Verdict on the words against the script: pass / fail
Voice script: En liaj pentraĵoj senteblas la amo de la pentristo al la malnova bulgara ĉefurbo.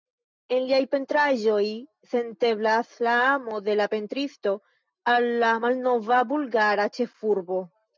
pass